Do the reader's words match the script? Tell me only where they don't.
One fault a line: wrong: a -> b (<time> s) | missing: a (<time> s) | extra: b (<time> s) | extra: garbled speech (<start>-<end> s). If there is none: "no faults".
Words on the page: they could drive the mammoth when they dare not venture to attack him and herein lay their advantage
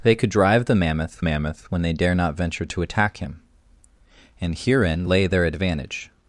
extra: mammoth (1.2 s)